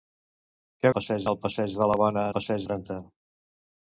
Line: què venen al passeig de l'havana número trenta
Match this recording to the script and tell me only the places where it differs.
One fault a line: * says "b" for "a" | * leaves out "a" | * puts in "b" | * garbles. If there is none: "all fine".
* says "passeig" for "venen"
* says "passeig" for "número"